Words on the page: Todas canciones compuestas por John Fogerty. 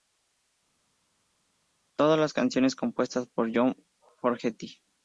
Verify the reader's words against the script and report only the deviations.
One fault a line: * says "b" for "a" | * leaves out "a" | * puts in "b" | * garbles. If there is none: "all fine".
* puts in "las"